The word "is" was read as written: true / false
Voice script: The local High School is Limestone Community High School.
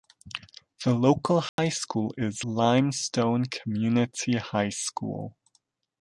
true